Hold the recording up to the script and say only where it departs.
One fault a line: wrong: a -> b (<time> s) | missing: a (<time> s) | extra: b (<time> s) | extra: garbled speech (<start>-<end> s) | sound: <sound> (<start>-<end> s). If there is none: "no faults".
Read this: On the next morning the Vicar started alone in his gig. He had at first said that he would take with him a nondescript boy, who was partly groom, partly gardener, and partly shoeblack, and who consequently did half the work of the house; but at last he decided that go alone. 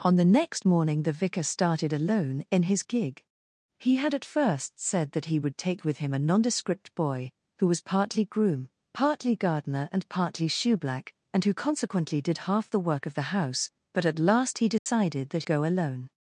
sound: dropout (14.8-14.9 s)